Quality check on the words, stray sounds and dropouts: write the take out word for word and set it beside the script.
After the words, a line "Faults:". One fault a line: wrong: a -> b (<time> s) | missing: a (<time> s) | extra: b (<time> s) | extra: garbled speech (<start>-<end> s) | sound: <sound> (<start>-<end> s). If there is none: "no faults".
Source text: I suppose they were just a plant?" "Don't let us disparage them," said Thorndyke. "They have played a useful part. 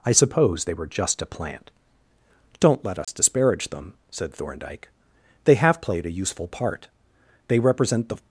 I suppose they were just a plant?" "Don't let us disparage them," said Thorndyke. "They have played a useful part. They represent the
Faults:
sound: dropout (3.0-3.1 s)
extra: They represent the (7.5 s)